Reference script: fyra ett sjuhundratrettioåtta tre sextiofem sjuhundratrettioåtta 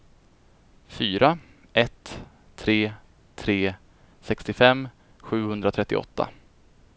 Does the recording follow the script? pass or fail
fail